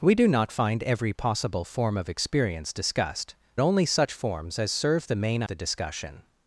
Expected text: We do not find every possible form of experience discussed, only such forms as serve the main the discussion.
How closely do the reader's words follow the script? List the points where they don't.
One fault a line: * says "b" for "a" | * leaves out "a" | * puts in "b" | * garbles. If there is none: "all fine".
all fine